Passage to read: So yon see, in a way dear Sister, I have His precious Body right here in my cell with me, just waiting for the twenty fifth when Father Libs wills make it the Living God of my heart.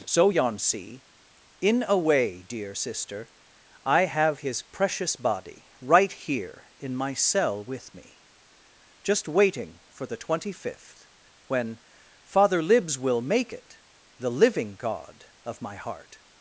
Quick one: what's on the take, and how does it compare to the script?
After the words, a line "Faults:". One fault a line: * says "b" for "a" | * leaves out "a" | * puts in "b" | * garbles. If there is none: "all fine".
So yon see, in a way dear Sister, I have His precious Body right here in my cell with me, just waiting for the twenty fifth when Father Libs will make it the Living God of my heart.
Faults:
* says "will" for "wills"